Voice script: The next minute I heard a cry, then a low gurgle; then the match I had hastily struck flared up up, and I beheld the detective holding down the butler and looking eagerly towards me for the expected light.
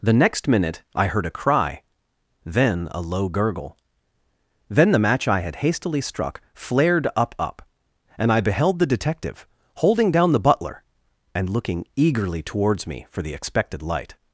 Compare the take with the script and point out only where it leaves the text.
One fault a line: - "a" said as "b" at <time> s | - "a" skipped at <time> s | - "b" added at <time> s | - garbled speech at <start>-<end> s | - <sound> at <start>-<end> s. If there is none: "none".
none